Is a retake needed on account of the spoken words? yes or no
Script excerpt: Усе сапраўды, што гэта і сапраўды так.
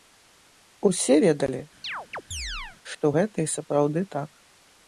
yes